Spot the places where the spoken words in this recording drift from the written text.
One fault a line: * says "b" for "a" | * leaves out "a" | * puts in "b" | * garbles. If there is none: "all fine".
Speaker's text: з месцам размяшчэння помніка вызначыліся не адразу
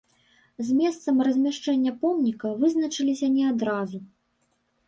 all fine